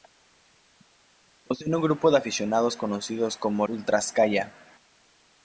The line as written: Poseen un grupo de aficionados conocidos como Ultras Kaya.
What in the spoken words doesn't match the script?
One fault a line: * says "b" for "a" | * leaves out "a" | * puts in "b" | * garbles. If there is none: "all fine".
all fine